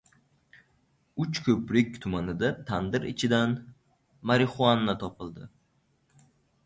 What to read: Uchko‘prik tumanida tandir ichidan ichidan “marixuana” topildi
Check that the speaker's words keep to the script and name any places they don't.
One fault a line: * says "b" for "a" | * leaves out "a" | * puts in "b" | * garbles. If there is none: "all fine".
* leaves out "ichidan"